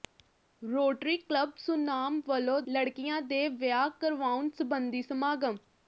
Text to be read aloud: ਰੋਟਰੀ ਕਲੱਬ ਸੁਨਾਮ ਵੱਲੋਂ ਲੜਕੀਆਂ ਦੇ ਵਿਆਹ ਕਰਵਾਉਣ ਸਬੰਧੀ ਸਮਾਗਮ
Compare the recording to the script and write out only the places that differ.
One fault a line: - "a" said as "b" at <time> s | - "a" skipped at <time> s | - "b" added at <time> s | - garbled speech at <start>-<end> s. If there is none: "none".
none